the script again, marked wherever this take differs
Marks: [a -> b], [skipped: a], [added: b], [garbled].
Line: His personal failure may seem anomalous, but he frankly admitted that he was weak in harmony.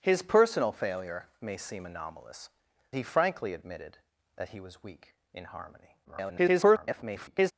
His personal failure may seem anomalous, [skipped: but] he frankly admitted that he was weak in harmony. [garbled]